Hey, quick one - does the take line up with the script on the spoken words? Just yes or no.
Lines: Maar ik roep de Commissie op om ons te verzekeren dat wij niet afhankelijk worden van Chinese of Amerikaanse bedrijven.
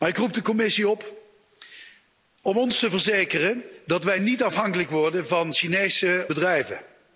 no